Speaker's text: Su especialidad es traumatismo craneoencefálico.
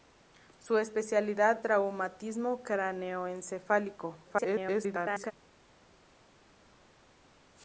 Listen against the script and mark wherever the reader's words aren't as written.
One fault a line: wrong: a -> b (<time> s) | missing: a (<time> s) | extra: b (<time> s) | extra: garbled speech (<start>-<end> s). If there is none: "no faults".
missing: es (1.6 s)
extra: garbled speech (4.2-5.3 s)